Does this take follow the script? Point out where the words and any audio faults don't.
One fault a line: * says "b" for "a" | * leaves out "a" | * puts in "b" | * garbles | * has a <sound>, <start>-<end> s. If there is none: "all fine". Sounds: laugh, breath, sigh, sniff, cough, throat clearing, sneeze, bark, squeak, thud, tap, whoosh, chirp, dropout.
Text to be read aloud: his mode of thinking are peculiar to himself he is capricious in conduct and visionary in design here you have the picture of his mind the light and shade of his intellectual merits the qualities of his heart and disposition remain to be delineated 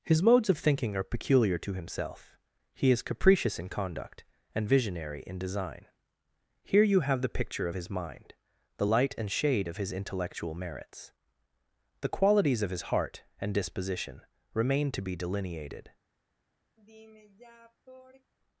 * says "modes" for "mode"
* has a sigh, 16.8-18.3 s